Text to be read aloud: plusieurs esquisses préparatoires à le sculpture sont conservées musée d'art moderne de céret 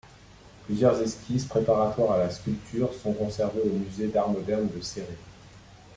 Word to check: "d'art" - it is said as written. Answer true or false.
true